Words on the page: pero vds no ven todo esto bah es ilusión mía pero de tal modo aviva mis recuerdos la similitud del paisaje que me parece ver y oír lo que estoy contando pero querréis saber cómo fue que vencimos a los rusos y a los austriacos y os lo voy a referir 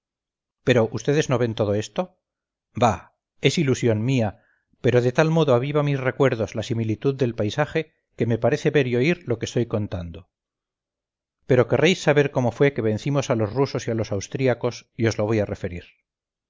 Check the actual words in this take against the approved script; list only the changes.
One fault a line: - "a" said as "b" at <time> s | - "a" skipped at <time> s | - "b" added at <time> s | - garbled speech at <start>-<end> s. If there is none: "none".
none